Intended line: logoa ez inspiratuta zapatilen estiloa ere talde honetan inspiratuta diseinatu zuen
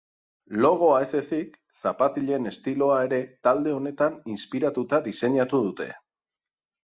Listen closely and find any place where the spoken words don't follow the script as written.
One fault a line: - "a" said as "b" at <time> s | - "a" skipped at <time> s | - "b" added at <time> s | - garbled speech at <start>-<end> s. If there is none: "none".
- "inspiratuta" said as "ezik" at 1.2 s
- "zuen" said as "dute" at 5.7 s